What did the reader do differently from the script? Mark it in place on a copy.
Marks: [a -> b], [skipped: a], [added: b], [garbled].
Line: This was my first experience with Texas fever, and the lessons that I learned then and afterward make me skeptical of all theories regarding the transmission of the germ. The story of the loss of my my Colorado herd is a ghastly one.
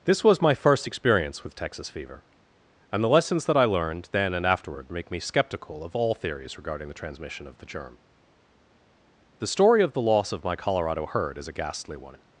This was my first experience with Texas fever, and the lessons that I learned then and afterward make me skeptical of all theories regarding the transmission of the germ. The story of the loss of my [skipped: my] Colorado herd is a ghastly one.